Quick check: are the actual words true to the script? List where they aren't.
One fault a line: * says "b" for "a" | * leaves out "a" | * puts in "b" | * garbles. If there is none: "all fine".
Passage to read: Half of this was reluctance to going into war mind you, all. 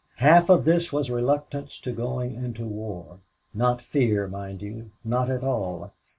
* puts in "not fear"
* puts in "not at"